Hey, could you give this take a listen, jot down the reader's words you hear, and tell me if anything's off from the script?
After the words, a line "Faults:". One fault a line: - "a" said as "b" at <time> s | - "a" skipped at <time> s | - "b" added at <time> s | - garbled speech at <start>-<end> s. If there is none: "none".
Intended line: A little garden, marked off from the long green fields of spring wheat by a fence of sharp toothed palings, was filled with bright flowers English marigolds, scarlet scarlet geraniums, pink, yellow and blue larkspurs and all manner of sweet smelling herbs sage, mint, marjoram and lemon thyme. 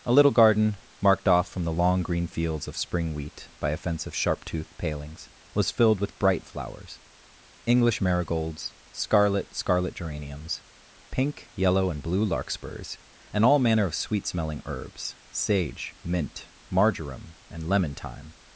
A little garden, marked off from the long green fields of spring wheat by a fence of sharp toothed palings, was filled with bright flowers English marigolds, scarlet scarlet geraniums, pink, yellow and blue larkspurs and all manner of sweet smelling herbs sage, mint, marjoram and lemon thyme.
Faults:
none